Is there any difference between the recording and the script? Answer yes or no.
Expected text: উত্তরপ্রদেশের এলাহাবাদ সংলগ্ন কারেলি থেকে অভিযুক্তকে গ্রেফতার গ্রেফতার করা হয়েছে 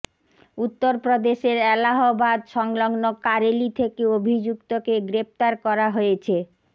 yes